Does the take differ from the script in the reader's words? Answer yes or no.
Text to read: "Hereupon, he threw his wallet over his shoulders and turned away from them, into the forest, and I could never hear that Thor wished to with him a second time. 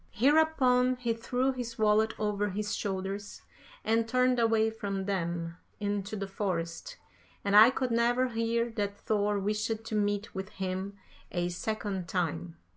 yes